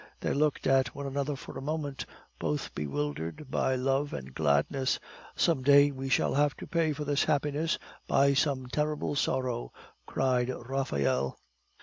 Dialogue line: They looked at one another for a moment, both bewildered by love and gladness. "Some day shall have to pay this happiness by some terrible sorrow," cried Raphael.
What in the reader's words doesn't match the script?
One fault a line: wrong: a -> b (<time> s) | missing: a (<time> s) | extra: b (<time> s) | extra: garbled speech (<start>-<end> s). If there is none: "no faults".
extra: we (5.9 s)
extra: for (6.9 s)